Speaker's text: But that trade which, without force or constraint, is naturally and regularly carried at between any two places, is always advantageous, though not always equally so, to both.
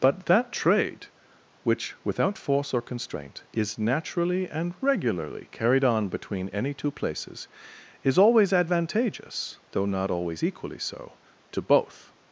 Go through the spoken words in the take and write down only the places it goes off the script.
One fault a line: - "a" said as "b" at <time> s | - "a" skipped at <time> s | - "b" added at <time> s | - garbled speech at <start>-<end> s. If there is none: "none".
- "at" said as "on" at 5.8 s